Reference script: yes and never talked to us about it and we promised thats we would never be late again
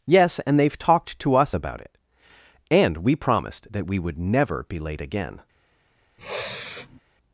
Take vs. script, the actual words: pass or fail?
fail